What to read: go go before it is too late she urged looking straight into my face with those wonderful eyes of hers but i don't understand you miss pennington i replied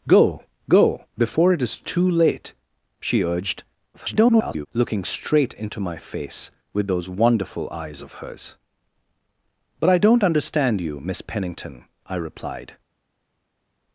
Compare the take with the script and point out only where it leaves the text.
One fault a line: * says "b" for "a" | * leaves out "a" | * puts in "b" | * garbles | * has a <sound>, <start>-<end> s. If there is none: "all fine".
* garbles